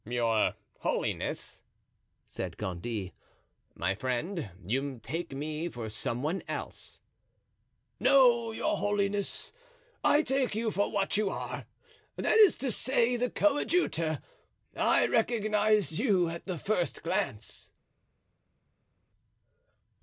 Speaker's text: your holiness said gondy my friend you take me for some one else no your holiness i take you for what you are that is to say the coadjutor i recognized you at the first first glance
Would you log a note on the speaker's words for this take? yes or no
yes